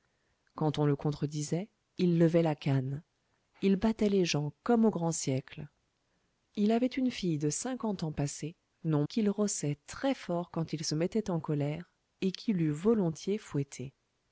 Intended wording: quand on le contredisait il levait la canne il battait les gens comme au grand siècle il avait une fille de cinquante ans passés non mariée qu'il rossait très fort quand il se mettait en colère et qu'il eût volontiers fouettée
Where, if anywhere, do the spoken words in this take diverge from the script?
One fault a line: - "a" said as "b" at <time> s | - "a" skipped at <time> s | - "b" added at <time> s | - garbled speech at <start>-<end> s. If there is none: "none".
- "mariée" skipped at 9.1 s